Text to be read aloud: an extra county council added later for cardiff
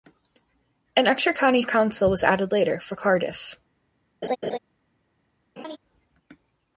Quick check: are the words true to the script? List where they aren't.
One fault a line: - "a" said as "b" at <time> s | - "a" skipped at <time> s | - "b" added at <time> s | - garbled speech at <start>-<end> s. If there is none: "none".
- "was" added at 2.1 s